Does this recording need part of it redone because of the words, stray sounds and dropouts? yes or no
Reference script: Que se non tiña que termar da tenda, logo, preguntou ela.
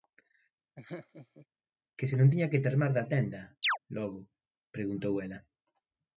yes